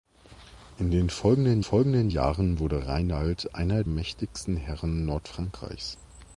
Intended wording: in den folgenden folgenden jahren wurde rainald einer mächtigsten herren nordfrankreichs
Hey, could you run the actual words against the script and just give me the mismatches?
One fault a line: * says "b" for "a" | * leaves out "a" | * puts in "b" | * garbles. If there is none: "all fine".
all fine